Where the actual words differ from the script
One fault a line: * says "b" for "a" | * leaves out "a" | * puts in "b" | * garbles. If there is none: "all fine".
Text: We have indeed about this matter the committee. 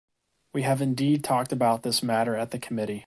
* puts in "talked"
* puts in "at"